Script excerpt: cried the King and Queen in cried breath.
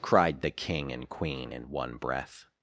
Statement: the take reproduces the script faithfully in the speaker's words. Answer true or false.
false